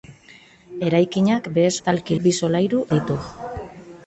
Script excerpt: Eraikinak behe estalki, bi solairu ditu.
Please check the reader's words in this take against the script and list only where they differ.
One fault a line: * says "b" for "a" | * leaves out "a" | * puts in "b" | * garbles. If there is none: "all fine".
all fine